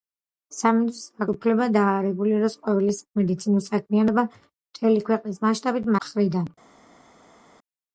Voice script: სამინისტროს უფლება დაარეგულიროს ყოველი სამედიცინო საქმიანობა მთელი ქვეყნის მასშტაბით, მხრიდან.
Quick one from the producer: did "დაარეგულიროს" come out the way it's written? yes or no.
yes